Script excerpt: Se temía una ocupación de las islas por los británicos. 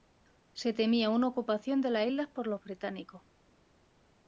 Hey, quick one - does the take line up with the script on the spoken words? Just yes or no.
yes